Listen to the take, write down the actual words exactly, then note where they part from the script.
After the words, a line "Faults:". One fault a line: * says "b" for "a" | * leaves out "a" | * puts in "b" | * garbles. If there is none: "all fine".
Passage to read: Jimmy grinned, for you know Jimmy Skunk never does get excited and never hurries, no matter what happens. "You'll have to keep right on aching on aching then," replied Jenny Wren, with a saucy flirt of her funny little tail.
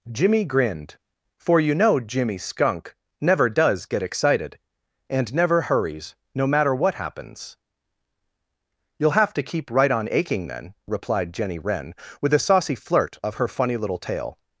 Jimmy grinned, for you know Jimmy Skunk never does get excited and never hurries, no matter what happens. "You'll have to keep right on aching then," replied Jenny Wren, with a saucy flirt of her funny little tail.
Faults:
* leaves out "on aching"